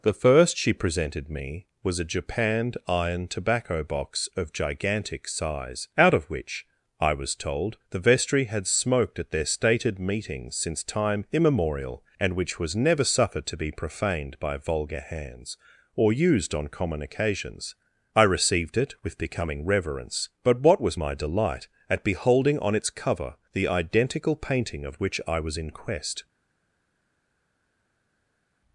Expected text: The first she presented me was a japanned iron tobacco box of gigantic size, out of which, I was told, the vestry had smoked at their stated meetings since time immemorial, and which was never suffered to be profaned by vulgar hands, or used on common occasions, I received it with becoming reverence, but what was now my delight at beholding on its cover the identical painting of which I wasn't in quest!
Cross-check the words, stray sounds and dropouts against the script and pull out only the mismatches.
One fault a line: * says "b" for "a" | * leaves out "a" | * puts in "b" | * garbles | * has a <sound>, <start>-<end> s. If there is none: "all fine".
* leaves out "now"
* says "was" for "wasn't"